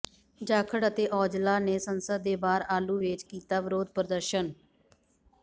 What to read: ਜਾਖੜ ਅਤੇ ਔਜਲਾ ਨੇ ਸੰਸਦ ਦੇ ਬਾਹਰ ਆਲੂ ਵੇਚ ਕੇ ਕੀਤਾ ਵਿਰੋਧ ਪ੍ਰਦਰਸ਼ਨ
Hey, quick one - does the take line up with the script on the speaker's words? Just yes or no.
no